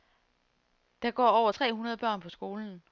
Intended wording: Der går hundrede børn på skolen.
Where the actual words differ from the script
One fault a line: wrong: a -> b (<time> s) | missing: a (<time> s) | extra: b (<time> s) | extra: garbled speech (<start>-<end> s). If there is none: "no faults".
extra: over tre (1.3 s)